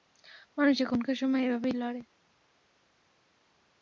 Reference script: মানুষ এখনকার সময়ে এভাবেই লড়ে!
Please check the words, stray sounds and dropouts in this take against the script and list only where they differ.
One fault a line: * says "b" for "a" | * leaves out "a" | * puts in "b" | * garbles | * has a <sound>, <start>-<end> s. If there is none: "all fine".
all fine